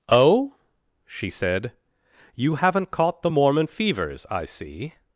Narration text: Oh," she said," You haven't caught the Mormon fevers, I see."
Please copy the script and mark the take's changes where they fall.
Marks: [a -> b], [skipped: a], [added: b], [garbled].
Oh," she said," You haven't caught the Mormon fevers, I see."